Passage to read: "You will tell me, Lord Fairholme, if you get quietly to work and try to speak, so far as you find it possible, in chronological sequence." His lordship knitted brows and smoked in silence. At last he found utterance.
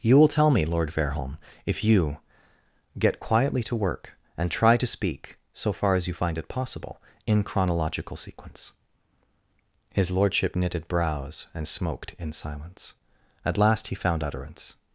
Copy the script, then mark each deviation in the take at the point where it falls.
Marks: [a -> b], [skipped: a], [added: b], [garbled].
"You will tell me, Lord Fairholme, if you get quietly to work and try to speak, so far as you find it possible, in chronological sequence." His lordship knitted brows and smoked in silence. At last he found utterance.